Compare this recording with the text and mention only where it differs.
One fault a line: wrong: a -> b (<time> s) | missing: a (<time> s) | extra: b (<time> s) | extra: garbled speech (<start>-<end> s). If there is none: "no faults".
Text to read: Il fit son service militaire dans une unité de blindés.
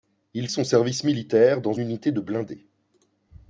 missing: fit (0.5 s)
missing: une (1.7 s)